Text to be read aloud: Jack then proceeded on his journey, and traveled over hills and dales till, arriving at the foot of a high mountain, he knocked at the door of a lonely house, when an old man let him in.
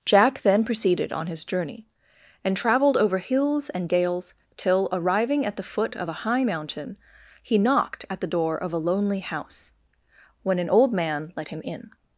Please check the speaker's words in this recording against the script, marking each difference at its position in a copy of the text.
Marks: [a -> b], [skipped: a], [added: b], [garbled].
Jack then proceeded on his journey, and traveled over hills and dales till, arriving at the foot of a high mountain, he knocked at the door of a lonely house, when an old man let him in.